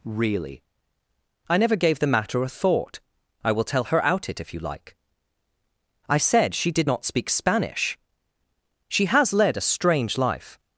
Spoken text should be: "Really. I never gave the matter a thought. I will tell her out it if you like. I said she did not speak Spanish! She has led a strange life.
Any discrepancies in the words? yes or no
no